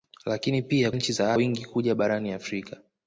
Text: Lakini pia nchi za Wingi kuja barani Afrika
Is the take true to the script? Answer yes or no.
yes